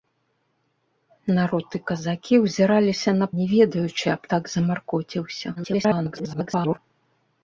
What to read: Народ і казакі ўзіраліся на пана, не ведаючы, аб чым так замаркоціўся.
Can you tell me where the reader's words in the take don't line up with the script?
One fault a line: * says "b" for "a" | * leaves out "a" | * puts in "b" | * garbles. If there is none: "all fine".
* leaves out "пана"
* leaves out "чым"
* garbles